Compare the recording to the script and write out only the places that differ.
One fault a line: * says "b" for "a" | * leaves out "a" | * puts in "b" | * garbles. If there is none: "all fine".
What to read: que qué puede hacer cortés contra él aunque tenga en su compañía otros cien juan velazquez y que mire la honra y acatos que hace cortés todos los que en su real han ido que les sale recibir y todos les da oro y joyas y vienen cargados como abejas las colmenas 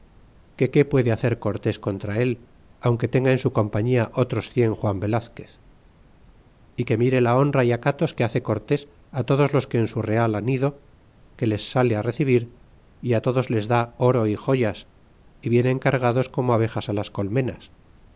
all fine